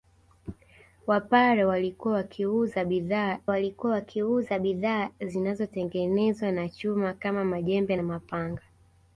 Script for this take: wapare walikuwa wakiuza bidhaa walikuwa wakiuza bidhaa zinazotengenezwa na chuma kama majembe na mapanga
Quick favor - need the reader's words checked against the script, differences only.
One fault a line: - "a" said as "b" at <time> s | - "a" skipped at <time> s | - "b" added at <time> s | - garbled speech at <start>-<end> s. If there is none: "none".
none